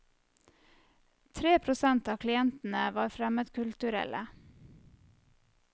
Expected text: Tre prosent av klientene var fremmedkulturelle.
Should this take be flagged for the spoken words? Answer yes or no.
no